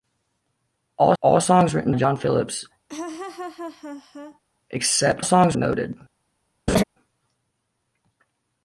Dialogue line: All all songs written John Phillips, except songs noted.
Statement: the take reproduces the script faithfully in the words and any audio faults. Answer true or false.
false